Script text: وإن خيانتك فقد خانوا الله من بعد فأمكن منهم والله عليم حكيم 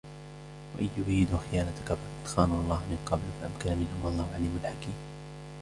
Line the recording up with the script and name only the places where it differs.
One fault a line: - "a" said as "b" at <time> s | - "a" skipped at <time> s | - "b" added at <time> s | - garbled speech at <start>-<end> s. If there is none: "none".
- "يريدوا" added at 1.0 s
- "بعد" said as "قبل" at 3.1 s